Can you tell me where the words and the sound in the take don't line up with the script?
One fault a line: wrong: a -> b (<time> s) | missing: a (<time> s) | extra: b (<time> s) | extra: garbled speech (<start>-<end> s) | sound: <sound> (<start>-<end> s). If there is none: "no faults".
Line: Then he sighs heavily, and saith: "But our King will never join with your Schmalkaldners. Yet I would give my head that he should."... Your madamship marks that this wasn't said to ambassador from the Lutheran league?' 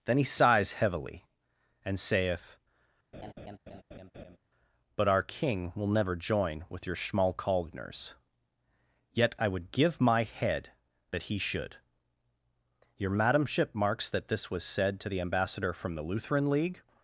sound: laugh (3.1-4.4 s)
wrong: wasn't -> was (14.5 s)
extra: the (15.1 s)